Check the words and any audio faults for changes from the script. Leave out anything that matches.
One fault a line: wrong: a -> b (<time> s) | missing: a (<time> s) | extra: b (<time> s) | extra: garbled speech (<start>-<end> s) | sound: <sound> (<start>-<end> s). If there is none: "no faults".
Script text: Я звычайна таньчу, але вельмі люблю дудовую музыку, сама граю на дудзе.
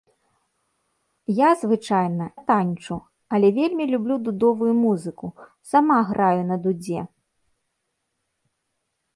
no faults